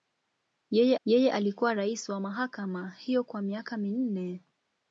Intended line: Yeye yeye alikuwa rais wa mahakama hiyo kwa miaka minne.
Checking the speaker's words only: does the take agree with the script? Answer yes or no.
yes